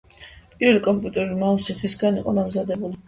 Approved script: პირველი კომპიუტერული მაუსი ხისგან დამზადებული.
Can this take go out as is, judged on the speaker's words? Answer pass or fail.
fail